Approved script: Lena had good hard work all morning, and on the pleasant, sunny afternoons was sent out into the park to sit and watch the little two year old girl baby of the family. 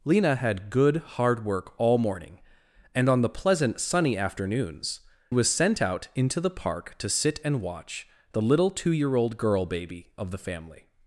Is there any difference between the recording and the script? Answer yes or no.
no